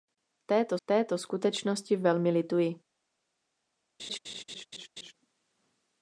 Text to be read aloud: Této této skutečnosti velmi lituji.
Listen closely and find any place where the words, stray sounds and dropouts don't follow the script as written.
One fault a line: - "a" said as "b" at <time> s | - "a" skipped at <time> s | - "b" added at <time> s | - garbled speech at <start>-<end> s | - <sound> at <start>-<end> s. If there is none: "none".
- laugh at 4.0-5.1 s